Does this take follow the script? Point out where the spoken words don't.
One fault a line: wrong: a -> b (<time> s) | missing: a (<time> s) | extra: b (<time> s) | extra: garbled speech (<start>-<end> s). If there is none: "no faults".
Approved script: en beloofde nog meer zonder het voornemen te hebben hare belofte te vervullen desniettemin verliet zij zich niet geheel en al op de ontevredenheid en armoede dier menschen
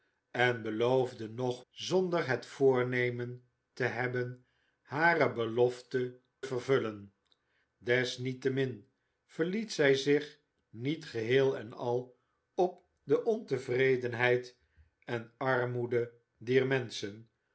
missing: meer (1.6 s)
missing: te (6.2 s)